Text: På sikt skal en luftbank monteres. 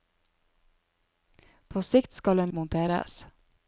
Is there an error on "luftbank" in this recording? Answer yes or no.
yes